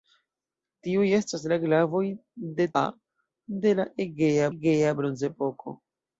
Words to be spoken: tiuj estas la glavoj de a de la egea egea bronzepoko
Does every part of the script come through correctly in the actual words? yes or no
yes